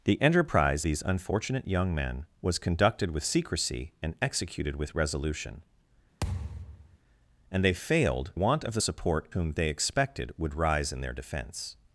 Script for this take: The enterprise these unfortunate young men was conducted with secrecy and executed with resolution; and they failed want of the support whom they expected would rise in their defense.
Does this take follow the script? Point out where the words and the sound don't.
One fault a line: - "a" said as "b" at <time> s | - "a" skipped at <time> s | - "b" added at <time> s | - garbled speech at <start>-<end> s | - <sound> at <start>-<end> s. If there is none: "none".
- thud at 6.2-7.0 s